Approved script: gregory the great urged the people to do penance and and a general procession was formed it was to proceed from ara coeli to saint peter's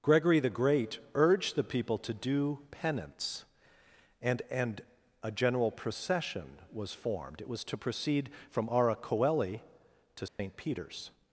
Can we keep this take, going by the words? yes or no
yes